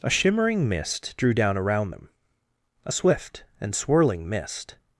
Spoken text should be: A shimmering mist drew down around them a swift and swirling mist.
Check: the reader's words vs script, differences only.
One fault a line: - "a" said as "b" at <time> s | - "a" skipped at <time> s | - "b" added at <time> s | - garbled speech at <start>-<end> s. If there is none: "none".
none